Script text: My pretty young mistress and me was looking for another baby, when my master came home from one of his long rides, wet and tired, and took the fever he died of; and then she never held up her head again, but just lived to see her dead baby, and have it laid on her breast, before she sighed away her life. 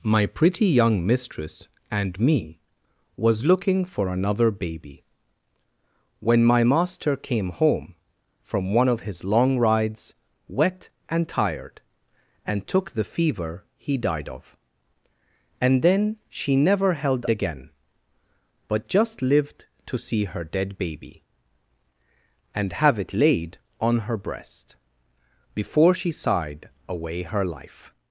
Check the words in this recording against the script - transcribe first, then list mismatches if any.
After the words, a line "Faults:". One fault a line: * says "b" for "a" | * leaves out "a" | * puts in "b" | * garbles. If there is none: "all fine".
My pretty young mistress and me was looking for another baby, when my master came home from one of his long rides, wet and tired, and took the fever he died of; and then she never held again, but just lived to see her dead baby, and have it laid on her breast, before she sighed away her life.
Faults:
* leaves out "up her head"